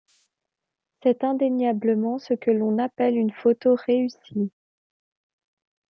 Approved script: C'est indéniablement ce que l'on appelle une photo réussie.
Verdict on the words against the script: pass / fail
pass